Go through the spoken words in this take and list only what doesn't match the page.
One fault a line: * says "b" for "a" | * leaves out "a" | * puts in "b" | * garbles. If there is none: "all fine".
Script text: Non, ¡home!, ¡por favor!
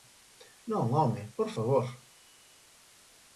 all fine